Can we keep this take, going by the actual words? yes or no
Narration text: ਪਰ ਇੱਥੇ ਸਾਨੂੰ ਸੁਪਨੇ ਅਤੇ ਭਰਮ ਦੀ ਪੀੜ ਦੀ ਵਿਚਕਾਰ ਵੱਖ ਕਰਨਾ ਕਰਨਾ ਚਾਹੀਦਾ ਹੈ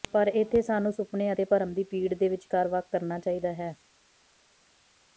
no